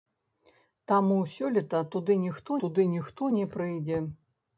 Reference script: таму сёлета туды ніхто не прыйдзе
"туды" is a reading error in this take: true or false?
false